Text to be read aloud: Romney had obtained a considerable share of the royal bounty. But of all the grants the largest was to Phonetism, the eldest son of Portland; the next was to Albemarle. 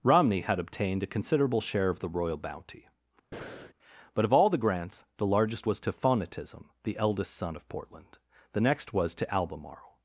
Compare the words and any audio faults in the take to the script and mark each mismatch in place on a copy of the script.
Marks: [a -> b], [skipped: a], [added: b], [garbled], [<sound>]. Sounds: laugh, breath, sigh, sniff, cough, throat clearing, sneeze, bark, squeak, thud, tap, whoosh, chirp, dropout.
Romney had obtained a considerable share of the royal bounty. [breath] But of all the grants the largest was to Phonetism, the eldest son of Portland; the next was to Albemarle.